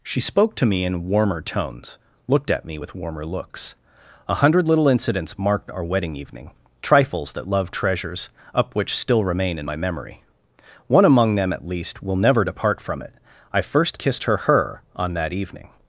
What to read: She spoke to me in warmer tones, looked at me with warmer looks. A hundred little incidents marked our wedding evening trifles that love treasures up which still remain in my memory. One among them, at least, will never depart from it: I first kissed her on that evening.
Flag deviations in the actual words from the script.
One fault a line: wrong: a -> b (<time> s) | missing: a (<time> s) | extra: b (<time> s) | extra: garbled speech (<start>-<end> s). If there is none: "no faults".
extra: her (14.4 s)